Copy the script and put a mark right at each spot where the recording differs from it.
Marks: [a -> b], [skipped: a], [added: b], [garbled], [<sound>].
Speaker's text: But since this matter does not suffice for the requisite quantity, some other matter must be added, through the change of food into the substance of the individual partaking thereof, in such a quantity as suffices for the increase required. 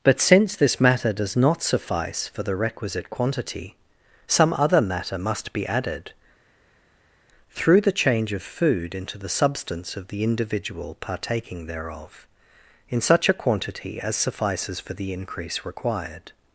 But since this matter does not suffice for the requisite quantity, some other matter must be added, through the change of food into the substance of the individual partaking thereof, in such a quantity as suffices for the increase required.